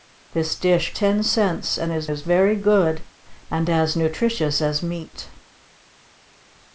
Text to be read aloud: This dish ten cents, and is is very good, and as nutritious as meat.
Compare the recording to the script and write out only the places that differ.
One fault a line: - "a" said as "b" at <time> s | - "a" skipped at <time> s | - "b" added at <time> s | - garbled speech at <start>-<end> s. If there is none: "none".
none